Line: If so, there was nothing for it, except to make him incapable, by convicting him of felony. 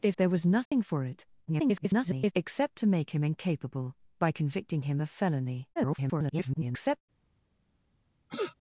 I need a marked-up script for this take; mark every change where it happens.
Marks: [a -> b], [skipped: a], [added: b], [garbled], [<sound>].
If [skipped: so,] there was nothing [dropout] for it, [garbled] except to make him incapable, by convicting him of felony. [garbled] [sniff]